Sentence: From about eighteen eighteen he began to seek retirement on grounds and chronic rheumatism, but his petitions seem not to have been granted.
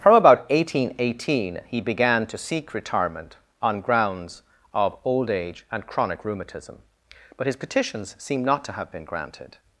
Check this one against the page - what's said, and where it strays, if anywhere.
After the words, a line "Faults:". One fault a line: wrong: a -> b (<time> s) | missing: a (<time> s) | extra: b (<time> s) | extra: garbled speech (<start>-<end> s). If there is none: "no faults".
From about eighteen eighteen he began to seek retirement on grounds of old age and chronic rheumatism, but his petitions seem not to have been granted.
Faults:
extra: of old age (4.7 s)